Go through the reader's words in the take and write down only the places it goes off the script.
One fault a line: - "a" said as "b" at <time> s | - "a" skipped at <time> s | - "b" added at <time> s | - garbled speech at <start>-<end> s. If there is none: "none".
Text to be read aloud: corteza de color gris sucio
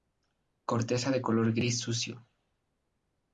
none